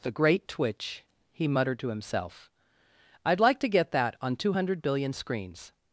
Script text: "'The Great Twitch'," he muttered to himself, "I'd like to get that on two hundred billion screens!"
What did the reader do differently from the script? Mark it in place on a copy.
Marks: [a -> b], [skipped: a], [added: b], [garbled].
"'The Great Twitch'," he muttered to himself, "I'd like to get that on two hundred billion screens!"